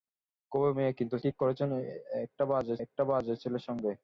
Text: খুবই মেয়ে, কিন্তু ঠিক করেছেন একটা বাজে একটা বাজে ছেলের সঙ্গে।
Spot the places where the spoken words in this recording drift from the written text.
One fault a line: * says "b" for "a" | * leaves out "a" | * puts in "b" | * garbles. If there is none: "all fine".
all fine